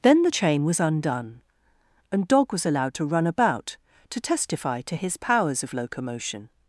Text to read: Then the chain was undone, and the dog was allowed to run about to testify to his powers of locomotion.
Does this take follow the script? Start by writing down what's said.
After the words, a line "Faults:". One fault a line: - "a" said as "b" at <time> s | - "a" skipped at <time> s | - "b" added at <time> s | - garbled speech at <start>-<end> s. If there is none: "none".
Then the chain was undone, and dog was allowed to run about to testify to his powers of locomotion.
Faults:
- "the" skipped at 2.3 s